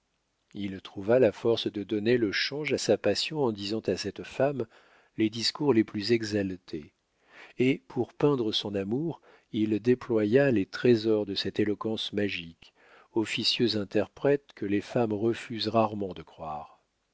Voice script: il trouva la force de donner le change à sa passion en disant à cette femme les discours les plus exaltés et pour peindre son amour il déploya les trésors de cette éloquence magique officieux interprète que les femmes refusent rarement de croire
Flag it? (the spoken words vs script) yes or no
no